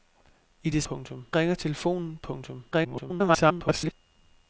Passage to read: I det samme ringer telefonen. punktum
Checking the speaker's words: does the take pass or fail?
fail